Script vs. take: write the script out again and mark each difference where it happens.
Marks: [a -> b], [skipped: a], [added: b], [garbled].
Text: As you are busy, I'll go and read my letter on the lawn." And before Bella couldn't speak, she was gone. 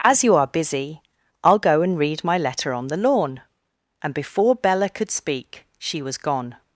As you are busy, I'll go and read my letter on the lawn." And before Bella [couldn't -> could] speak, she was gone.